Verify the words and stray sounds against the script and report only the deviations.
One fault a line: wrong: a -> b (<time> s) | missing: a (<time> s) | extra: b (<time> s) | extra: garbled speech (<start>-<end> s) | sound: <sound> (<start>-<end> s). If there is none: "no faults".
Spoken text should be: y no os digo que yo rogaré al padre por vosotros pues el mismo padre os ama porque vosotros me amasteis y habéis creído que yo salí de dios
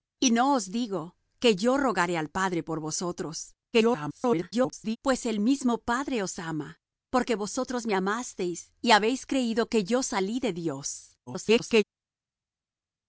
extra: garbled speech (3.7-5.0 s)
extra: garbled speech (11.3-11.8 s)